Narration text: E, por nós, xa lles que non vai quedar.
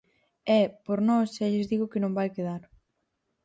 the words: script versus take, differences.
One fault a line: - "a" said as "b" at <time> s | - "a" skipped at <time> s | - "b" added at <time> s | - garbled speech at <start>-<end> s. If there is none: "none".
- "digo" added at 1.7 s